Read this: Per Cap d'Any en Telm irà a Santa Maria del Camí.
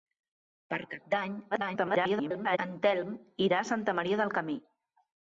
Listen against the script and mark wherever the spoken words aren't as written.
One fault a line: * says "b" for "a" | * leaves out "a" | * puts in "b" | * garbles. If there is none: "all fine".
* garbles